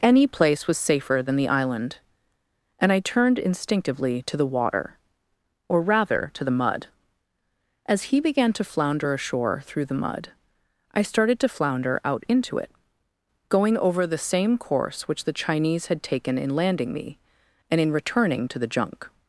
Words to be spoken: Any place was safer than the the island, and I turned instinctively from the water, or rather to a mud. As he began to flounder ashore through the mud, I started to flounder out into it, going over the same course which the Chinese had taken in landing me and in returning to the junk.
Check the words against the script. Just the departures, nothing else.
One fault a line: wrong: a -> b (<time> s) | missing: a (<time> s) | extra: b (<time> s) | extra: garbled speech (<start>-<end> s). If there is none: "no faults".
missing: the (1.5 s)
wrong: from -> to (4.2 s)
wrong: a -> the (6.4 s)